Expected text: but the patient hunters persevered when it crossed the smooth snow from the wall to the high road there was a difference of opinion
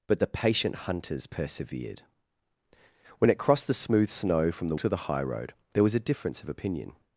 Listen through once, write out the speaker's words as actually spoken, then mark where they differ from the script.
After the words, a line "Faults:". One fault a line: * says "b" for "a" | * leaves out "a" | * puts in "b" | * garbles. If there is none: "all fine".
but the patient hunters persevered when it crossed the smooth snow from the to the high road there was a difference of opinion
Faults:
* leaves out "wall"